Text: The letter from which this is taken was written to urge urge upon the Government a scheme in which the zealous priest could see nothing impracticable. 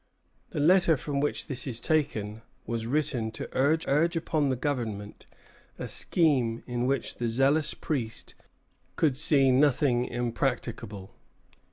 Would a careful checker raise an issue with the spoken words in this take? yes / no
no